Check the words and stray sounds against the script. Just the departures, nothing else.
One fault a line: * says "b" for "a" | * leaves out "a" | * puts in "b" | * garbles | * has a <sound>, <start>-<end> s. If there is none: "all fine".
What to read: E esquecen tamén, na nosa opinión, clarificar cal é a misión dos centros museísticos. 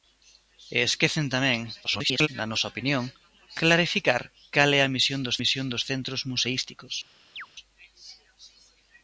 * garbles
* puts in "misión dos"
* has a chirp, 7.4-7.5 s